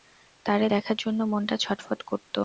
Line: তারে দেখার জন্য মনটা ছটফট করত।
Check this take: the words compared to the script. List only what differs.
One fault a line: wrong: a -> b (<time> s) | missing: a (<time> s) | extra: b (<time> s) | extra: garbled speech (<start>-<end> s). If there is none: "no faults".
no faults